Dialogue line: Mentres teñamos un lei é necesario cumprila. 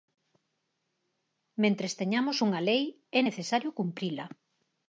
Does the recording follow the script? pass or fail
fail